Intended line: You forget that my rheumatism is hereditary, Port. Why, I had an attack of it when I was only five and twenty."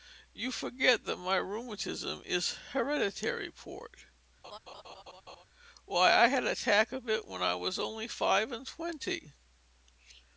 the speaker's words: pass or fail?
pass